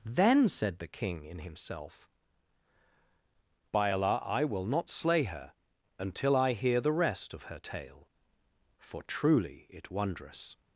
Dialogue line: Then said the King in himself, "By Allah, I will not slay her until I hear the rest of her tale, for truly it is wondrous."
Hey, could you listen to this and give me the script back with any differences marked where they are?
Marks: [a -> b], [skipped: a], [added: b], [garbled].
Then said the King in himself, "By Allah, I will not slay her until I hear the rest of her tale, for truly it [skipped: is] wondrous."